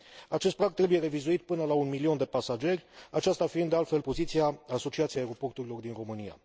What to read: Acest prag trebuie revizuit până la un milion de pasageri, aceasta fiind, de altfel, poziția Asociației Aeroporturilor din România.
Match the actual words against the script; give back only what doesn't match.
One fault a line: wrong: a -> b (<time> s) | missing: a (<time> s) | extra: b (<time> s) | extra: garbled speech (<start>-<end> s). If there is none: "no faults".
no faults